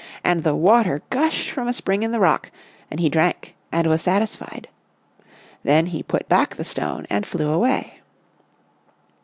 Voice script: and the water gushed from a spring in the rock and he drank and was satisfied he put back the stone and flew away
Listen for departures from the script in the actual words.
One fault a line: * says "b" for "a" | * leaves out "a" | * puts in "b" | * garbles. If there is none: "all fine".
* puts in "then"